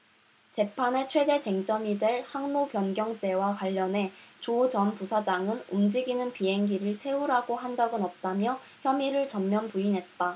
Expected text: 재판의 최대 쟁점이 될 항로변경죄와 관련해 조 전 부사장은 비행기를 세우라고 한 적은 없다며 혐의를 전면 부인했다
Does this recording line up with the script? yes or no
no